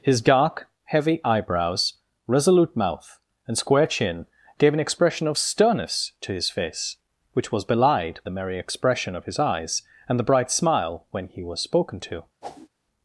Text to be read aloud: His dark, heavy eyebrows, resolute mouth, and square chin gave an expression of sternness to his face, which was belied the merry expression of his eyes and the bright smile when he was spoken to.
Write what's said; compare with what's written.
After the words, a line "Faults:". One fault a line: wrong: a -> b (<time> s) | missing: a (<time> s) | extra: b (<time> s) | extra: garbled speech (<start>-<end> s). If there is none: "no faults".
His dark, heavy eyebrows, resolute mouth, and square chin gave an expression of sternness to his face, which was belied the merry expression of his eyes and the bright smile when he was spoken to.
Faults:
no faults